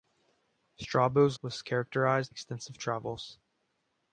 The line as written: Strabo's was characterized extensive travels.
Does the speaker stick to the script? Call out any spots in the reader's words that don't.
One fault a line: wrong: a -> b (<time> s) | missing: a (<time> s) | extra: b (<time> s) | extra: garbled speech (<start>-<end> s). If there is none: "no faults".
no faults